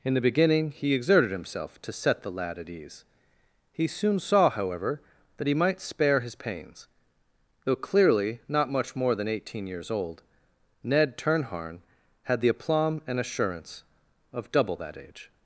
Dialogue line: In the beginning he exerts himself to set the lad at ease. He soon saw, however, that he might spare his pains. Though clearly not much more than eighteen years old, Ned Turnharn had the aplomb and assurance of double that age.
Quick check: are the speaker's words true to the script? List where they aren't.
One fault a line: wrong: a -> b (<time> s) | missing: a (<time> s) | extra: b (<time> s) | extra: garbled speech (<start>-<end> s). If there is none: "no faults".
wrong: exerts -> exerted (0.9 s)